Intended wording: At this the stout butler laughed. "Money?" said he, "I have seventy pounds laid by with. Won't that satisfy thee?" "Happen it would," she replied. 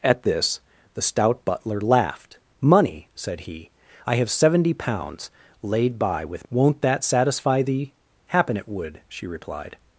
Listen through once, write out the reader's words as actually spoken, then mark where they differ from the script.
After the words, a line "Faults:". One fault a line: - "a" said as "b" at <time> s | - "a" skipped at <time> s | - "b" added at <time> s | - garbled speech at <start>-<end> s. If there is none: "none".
At this the stout butler laughed. "Money?" said he, "I have seventy pounds laid by with. Won't that satisfy thee?" "Happen it would," she replied.
Faults:
none